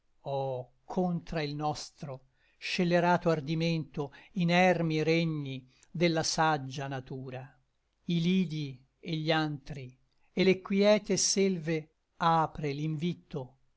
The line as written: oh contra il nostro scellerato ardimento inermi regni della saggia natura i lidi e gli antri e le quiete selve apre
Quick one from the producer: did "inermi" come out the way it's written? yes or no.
yes